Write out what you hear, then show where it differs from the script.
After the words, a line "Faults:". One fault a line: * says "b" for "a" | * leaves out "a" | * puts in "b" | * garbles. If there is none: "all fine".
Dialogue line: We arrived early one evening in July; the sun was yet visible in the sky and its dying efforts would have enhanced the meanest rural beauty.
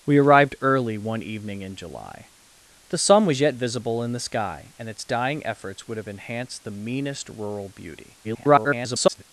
We arrived early one evening in July; the sun was yet visible in the sky and its dying efforts would have enhanced the meanest rural beauty. [garbled]
Faults:
* garbles